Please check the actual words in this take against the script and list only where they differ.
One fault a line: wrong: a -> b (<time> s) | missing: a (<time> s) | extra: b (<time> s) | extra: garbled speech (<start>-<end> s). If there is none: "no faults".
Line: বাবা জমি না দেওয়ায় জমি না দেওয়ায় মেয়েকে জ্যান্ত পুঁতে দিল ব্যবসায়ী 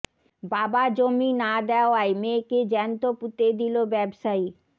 missing: জমি না দেওয়ায় (2.1 s)